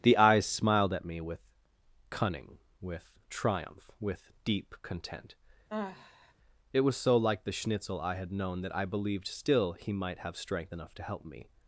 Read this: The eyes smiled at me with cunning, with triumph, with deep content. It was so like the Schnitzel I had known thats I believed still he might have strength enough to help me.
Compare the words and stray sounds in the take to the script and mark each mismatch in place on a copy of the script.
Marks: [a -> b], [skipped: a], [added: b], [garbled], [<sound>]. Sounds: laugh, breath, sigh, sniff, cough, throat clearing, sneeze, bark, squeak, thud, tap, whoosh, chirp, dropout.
The eyes smiled at me with cunning, with triumph, with deep content. [sigh] It was so like the Schnitzel I had known [thats -> that] I believed still he might have strength enough to help me.